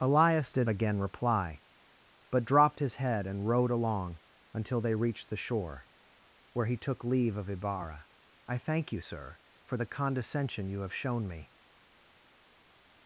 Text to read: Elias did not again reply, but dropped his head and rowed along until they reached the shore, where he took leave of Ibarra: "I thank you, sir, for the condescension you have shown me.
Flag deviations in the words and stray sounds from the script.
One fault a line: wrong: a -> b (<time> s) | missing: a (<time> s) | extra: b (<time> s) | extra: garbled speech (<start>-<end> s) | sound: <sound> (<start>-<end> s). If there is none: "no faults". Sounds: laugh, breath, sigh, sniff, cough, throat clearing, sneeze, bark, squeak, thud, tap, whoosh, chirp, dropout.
missing: not (0.7 s)